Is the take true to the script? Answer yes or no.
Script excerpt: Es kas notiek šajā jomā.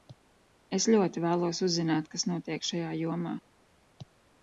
no